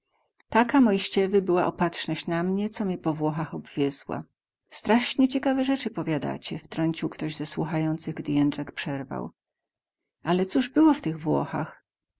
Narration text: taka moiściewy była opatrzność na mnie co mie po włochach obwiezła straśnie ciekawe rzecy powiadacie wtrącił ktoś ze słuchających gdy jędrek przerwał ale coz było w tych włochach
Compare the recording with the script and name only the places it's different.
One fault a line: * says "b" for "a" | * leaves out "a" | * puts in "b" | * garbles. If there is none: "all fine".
all fine